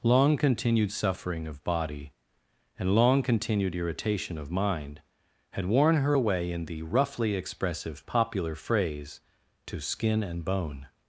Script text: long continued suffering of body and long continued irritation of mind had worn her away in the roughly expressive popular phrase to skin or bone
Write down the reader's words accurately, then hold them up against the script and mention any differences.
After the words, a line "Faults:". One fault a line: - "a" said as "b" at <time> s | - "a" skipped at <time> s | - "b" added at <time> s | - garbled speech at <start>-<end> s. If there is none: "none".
long continued suffering of body and long continued irritation of mind had worn her away in the roughly expressive popular phrase to skin and bone
Faults:
- "or" said as "and" at 10.2 s